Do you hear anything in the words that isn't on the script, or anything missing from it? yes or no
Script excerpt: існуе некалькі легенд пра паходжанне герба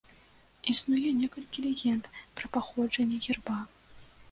no